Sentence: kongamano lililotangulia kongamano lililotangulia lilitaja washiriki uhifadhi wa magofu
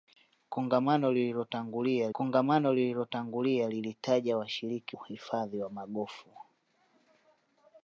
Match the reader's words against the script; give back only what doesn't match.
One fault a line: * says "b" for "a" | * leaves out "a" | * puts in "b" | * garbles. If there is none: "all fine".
all fine